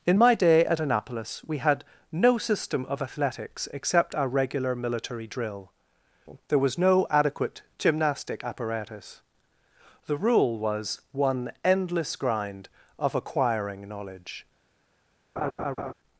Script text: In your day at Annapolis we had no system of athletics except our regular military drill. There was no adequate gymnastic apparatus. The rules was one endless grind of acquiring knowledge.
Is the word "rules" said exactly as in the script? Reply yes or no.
no